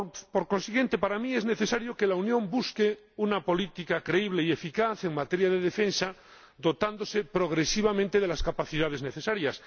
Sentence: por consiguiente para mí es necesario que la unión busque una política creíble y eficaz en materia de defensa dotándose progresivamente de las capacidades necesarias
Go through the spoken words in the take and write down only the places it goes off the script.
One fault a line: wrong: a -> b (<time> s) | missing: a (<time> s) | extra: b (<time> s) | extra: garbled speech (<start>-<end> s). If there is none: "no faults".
no faults